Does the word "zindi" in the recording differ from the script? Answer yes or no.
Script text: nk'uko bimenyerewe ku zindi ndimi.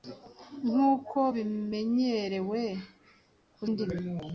yes